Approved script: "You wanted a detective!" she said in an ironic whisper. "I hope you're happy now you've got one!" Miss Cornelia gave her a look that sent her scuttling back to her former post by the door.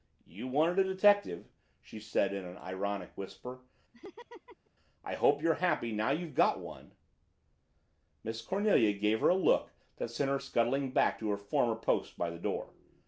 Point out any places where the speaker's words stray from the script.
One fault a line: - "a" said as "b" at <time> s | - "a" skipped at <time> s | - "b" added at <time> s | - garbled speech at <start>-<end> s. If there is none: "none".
none